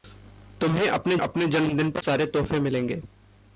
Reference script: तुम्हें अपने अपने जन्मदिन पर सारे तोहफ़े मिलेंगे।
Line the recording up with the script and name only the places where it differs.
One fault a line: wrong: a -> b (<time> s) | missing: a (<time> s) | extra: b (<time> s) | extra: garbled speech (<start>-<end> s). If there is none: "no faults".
no faults